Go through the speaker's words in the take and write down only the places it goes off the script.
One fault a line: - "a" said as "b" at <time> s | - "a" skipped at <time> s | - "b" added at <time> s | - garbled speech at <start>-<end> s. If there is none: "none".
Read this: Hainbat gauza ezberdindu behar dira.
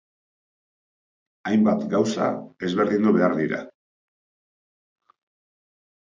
none